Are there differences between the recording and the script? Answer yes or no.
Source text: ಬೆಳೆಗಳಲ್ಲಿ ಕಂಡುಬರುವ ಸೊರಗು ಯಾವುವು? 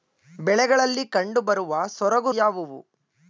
no